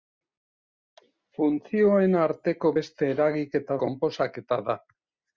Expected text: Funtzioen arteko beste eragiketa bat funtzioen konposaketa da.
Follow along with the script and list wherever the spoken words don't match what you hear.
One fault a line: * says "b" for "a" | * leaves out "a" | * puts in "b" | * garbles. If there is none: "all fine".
* leaves out "bat funtzioen"